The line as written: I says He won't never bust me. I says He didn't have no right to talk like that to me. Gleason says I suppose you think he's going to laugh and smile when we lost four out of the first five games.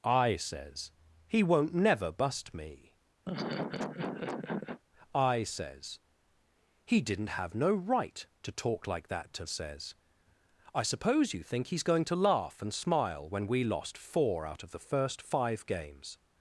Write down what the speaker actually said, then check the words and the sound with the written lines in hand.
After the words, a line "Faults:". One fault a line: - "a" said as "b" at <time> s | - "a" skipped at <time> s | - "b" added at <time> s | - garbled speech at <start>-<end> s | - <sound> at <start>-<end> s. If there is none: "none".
I says He won't never bust me. I says He didn't have no right to talk like that to says I suppose you think he's going to laugh and smile when we lost four out of the first five games.
Faults:
- laugh at 3.2-4.8 s
- "me Gleason" skipped at 9.4 s